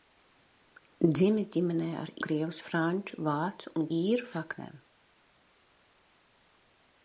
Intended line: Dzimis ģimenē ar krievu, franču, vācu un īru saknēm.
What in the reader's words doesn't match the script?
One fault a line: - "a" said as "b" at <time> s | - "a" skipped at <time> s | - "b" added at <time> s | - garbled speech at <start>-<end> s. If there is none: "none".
none